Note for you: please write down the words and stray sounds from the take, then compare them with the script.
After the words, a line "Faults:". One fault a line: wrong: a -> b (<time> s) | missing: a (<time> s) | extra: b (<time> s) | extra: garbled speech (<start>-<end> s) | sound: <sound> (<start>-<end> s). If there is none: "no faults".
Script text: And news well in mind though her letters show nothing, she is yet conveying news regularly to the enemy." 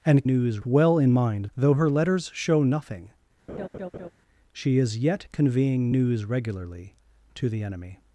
And news well in mind though her letters show nothing, she is yet conveying news regularly to the enemy."
Faults:
sound: laugh (3.5-4.1 s)